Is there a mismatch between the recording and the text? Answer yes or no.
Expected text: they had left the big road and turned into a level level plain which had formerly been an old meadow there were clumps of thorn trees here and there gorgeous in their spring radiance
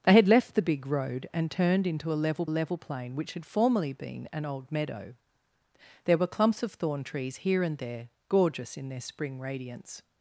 no